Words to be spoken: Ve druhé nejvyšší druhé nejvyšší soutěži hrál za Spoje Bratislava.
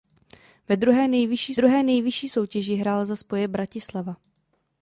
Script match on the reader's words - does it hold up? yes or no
yes